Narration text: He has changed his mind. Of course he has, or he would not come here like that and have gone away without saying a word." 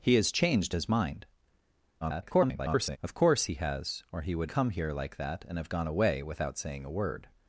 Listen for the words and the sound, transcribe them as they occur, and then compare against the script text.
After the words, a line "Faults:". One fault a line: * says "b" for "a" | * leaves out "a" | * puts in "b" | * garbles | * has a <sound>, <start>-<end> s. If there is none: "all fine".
He has changed his mind. [garbled] Of course he has, or he would come here like that and have gone away without saying a word."
Faults:
* garbles
* leaves out "not"